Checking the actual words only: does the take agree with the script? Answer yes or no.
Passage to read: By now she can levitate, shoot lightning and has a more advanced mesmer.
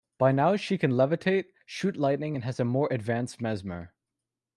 yes